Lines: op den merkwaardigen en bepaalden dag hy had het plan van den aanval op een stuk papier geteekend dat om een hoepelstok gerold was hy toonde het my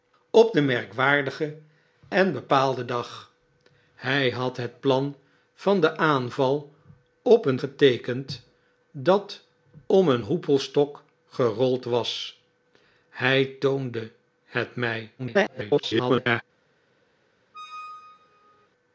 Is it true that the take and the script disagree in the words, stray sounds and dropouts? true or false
true